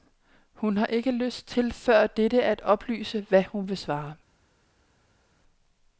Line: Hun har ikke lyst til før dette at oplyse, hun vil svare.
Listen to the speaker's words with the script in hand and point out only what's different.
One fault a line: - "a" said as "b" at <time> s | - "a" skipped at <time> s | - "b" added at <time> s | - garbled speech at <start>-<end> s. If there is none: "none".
- "hvad" added at 3.3 s